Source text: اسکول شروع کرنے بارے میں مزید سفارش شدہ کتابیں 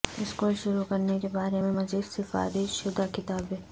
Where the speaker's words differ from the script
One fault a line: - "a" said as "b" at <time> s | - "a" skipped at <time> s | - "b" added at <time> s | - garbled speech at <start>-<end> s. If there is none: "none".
- "کے" added at 1.2 s